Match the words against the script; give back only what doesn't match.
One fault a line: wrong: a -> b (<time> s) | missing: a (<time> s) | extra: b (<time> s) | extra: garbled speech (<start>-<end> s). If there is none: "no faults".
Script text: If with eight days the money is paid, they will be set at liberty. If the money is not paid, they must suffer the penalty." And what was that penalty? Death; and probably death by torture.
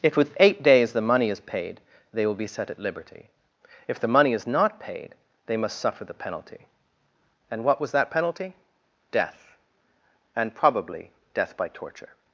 no faults